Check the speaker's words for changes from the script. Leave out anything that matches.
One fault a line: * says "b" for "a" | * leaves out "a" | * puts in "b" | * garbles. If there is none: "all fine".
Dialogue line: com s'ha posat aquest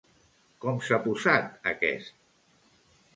all fine